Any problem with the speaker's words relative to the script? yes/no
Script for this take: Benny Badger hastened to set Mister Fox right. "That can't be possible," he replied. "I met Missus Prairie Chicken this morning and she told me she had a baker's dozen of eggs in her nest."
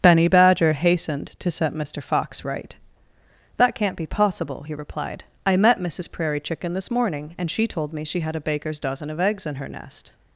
no